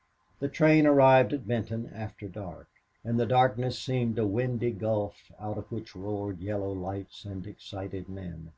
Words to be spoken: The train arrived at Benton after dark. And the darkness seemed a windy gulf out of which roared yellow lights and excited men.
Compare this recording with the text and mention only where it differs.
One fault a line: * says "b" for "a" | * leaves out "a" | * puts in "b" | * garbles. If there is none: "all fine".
all fine